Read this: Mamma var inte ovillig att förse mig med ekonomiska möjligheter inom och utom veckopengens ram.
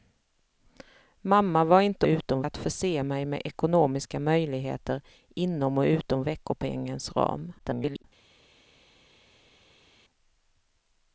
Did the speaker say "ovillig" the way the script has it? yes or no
no